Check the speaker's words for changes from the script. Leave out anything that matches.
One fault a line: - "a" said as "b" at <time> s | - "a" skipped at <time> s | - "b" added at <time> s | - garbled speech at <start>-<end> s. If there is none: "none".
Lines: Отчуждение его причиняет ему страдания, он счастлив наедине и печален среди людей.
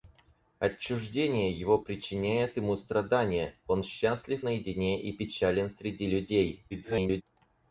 - garbled speech at 6.7-7.2 s